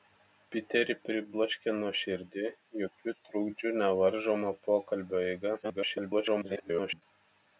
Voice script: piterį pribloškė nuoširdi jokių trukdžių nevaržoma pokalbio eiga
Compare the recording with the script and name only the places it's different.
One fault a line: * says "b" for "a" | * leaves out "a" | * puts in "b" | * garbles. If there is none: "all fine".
* garbles